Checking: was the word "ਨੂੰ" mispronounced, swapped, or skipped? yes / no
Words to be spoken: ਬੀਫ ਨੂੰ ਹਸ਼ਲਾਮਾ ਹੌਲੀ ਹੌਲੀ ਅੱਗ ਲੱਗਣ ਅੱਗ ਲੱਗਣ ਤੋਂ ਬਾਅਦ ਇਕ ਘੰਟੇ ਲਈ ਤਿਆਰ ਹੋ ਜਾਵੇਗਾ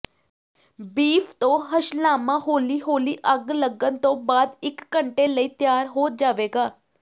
yes